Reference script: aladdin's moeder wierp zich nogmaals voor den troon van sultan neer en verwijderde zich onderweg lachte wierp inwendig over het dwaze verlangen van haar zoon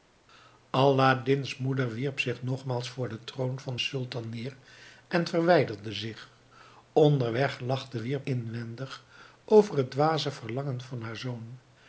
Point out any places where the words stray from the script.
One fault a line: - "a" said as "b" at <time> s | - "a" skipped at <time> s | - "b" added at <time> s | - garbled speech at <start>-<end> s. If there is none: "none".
none